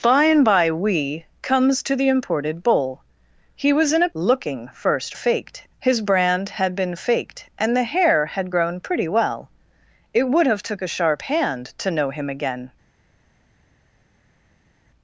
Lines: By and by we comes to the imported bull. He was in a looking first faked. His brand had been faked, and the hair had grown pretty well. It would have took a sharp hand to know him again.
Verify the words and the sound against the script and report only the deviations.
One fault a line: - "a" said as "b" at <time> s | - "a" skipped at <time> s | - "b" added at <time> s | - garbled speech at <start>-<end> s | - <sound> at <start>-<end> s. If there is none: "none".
none